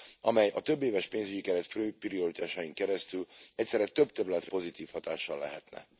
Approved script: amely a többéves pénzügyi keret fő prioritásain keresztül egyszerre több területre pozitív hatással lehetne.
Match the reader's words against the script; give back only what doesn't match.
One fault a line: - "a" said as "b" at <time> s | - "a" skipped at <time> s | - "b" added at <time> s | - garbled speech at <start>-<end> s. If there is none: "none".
none